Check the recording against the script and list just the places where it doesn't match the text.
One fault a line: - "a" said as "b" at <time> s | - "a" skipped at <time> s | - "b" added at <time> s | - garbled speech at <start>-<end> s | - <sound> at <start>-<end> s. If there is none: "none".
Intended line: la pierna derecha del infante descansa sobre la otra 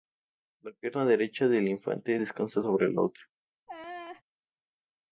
- laugh at 3.7-4.2 s